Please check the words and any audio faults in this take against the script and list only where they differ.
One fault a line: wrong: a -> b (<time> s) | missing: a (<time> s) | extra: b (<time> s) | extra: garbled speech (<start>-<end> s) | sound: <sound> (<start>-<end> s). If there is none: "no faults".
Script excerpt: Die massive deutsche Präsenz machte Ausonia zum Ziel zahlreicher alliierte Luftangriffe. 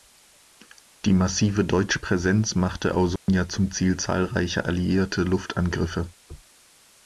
sound: dropout (3.2-3.3 s)